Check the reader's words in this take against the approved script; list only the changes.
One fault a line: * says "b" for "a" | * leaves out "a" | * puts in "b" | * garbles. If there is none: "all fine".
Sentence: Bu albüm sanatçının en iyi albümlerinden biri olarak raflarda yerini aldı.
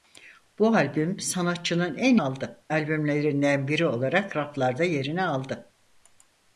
* says "aldı" for "iyi"